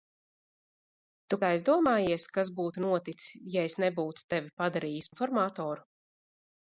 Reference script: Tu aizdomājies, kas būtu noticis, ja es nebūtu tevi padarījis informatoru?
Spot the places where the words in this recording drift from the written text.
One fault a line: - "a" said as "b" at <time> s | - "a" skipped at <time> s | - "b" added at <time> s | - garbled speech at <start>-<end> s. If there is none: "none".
none